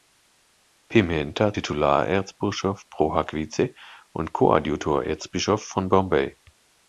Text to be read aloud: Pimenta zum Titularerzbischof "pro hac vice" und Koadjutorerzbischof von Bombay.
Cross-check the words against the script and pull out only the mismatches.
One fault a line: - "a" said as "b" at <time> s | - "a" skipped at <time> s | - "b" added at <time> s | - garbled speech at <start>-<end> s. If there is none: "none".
- "zum" skipped at 1.5 s